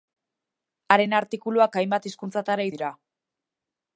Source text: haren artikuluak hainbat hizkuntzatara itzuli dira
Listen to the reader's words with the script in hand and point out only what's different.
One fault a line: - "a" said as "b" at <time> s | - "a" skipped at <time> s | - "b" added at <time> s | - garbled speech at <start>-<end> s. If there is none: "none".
- "itzuli" skipped at 2.7 s